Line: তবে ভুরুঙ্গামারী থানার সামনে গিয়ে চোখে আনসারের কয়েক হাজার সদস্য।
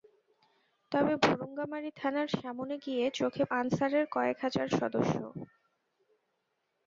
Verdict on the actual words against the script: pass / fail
pass